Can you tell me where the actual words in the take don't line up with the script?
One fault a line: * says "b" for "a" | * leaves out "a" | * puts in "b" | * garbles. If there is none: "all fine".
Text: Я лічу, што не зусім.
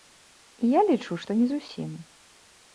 all fine